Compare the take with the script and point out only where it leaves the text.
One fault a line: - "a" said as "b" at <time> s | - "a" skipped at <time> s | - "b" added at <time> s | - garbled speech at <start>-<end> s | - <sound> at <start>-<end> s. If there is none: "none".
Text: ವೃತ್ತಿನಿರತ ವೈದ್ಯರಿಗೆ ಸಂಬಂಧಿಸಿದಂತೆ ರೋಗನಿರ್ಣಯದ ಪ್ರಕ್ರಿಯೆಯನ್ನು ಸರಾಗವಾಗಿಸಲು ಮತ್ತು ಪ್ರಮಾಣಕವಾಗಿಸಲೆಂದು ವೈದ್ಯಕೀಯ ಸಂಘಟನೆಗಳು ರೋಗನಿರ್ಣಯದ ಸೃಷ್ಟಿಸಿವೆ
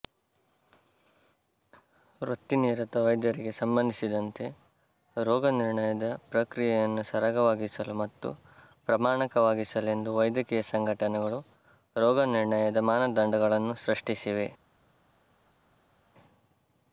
- "ಮಾನದಂಡಗಳನ್ನು" added at 12.9 s